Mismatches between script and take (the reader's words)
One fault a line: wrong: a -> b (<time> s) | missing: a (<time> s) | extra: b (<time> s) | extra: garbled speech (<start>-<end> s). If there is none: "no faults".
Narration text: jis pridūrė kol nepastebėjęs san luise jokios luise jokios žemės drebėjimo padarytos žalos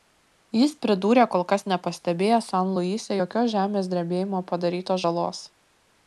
extra: kas (1.5 s)
missing: luise jokios (3.5 s)